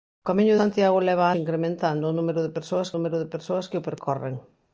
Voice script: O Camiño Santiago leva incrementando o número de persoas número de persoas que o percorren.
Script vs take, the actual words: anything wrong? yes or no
no